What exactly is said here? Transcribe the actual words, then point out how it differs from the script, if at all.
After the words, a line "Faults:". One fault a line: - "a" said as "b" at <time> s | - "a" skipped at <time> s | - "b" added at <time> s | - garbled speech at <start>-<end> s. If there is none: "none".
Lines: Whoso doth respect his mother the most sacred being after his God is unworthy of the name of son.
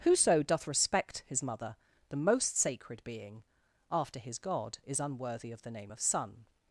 Whoso doth respect his mother the most sacred being after his God is unworthy of the name of son.
Faults:
none